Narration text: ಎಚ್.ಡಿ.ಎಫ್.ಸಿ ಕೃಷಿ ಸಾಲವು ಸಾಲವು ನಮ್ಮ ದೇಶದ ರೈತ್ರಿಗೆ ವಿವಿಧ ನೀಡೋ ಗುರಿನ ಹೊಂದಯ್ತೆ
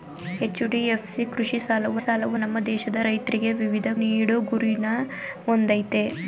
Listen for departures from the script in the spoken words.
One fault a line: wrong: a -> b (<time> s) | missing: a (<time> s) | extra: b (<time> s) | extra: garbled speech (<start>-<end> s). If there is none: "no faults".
no faults